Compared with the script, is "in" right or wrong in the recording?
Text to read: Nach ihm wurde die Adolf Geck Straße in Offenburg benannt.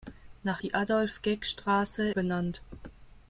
wrong